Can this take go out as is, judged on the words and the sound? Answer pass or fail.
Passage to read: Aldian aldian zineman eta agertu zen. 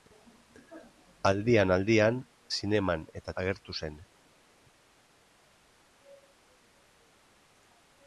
pass